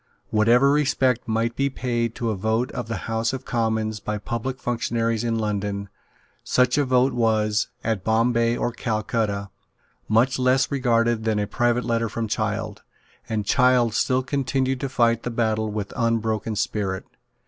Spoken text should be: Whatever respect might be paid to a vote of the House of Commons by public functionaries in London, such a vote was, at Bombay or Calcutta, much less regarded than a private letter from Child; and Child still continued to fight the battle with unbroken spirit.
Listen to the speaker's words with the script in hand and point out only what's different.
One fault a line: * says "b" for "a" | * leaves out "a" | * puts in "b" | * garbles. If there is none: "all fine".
all fine